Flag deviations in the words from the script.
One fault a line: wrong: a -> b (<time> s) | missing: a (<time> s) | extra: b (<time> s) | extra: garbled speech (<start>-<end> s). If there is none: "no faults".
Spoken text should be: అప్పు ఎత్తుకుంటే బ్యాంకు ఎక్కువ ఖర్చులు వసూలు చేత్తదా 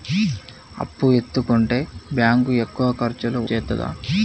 missing: వసూలు (3.4 s)